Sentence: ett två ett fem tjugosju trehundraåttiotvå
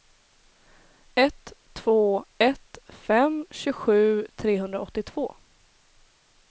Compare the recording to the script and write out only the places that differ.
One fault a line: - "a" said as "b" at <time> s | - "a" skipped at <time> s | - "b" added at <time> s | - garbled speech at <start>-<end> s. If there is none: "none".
none